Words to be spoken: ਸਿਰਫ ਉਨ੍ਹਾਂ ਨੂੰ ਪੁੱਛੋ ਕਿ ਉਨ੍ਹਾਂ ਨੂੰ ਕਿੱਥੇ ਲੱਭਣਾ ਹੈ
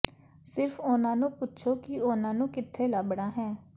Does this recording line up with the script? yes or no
yes